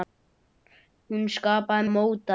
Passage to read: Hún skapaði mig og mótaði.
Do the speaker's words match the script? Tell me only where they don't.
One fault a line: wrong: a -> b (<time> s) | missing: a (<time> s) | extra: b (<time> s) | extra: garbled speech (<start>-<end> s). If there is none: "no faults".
missing: mig (1.9 s)